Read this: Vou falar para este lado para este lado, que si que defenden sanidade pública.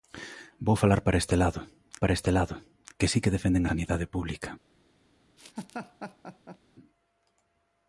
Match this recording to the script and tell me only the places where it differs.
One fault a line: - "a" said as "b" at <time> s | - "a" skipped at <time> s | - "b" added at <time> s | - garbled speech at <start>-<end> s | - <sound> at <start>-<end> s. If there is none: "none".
- laugh at 5.4-6.6 s